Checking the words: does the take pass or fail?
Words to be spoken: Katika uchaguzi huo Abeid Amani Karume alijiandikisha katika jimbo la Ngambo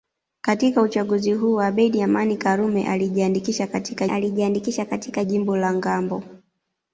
fail